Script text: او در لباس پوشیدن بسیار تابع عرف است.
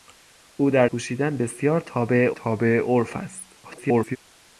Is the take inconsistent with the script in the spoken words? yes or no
yes